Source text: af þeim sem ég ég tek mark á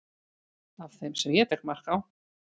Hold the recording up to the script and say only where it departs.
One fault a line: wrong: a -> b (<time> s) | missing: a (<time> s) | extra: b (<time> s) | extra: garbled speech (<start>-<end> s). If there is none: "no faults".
missing: ég (1.5 s)